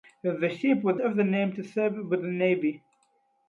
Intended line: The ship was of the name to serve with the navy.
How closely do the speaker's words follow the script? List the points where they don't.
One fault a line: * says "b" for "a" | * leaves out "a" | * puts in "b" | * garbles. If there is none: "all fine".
all fine